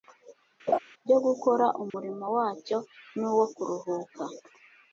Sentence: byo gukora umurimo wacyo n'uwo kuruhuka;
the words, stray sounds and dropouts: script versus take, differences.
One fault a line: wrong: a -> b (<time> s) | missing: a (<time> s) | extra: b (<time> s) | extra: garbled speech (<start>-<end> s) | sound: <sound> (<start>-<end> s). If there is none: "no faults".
sound: laugh (0.7-0.8 s)
sound: dropout (1.9-1.9 s)